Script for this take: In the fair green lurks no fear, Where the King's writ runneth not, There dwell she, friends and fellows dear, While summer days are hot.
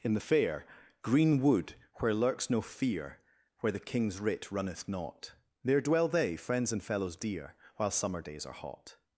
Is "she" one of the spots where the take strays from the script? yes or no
yes